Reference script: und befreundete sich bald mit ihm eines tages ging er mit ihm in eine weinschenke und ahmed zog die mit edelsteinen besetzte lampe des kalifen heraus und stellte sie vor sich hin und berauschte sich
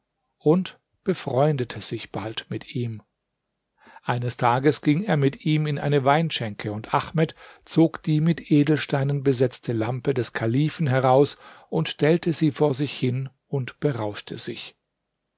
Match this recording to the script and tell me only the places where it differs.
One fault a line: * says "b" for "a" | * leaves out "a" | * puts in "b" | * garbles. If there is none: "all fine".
all fine